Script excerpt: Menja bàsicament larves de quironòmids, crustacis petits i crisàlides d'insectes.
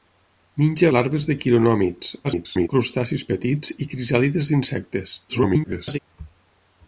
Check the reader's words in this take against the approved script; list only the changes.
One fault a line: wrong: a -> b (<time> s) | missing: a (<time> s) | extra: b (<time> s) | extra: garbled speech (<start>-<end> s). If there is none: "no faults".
missing: bàsicament (0.9 s)
extra: garbled speech (2.2-2.7 s)
extra: garbled speech (5.3-6.0 s)